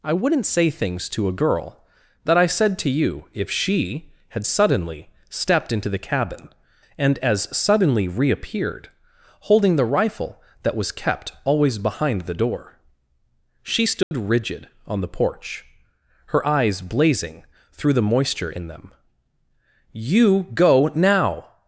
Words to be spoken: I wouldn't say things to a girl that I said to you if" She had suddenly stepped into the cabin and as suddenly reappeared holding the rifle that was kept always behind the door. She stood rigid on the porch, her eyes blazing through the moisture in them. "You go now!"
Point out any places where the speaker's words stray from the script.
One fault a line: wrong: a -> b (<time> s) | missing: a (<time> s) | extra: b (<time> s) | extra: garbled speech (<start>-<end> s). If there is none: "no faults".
no faults